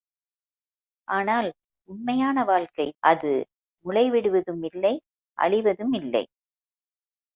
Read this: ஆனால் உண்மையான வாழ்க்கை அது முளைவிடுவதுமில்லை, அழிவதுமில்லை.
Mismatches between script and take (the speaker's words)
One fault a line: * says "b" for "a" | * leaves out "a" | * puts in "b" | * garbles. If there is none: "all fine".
all fine